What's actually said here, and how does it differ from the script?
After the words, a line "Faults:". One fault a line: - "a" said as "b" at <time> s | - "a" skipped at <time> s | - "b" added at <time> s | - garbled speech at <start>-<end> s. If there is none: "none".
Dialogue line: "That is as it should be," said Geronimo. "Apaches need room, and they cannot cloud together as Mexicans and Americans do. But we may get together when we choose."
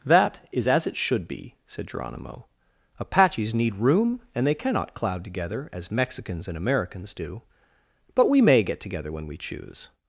"That is as it should be," said Geronimo. "Apaches need room, and they cannot cloud together as Mexicans and Americans do. But we may get together when we choose."
Faults:
none